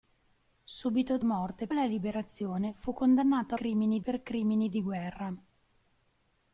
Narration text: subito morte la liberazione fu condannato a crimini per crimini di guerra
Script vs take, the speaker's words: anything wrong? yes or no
no